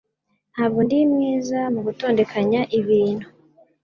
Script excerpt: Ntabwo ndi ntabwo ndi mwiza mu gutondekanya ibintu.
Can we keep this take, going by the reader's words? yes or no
no